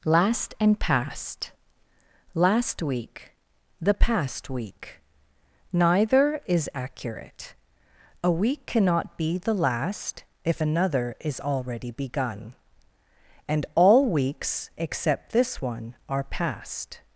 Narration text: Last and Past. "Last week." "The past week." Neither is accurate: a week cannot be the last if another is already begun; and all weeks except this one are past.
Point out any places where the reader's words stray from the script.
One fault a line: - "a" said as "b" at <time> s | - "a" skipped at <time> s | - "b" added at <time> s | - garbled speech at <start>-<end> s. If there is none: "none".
none